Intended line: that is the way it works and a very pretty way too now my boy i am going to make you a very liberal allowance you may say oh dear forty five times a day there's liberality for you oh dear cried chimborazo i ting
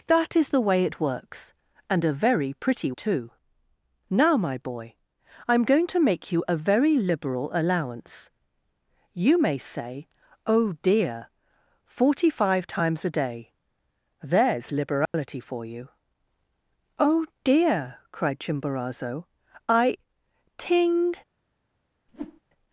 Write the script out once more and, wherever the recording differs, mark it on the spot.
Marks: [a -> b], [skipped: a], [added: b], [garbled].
that is the way it works and a very pretty [skipped: way] too now my boy i am going to make you a very liberal allowance you may say oh dear forty five times a day there's liberality for you oh dear cried chimborazo i ting